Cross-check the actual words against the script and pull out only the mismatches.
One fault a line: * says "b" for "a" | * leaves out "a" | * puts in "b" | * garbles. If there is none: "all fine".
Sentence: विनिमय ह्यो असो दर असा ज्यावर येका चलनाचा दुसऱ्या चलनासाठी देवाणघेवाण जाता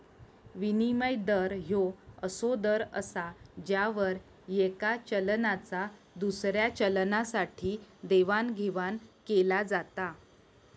* puts in "दर"
* puts in "केला"